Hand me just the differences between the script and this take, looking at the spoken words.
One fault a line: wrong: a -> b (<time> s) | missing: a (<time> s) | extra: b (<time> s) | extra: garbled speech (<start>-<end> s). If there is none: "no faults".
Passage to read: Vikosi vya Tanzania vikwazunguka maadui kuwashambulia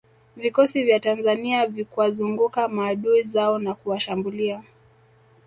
extra: zao na (3.2 s)